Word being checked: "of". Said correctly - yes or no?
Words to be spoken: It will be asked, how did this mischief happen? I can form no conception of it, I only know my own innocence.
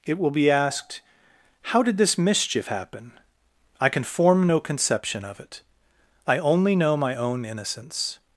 yes